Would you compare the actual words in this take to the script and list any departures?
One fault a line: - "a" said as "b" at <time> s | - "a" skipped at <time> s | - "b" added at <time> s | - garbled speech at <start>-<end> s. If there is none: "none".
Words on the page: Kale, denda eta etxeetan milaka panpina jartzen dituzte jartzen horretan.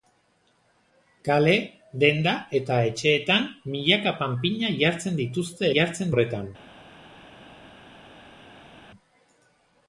none